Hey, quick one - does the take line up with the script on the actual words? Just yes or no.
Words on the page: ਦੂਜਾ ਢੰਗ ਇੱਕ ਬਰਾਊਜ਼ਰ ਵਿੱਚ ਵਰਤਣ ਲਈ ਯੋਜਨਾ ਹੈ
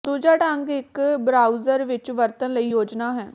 yes